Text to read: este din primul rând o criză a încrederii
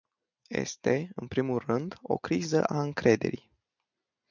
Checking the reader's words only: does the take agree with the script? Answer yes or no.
no